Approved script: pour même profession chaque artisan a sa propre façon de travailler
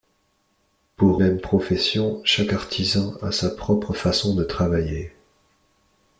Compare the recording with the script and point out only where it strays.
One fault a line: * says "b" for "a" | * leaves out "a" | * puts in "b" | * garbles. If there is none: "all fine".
all fine